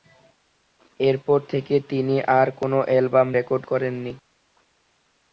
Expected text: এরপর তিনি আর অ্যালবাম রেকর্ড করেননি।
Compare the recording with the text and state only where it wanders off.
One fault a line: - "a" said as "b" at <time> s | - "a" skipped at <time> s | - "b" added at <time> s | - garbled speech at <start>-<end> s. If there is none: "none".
- "থেকে" added at 1.5 s
- "কোন" added at 2.6 s